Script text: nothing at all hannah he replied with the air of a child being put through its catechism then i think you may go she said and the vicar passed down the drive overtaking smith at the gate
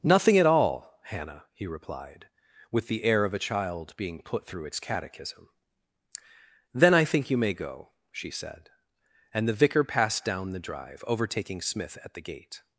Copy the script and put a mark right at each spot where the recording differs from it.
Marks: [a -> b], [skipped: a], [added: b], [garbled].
nothing at all hannah he replied with the air of a child being put through its catechism then i think you may go she said and the vicar passed down the drive overtaking smith at the gate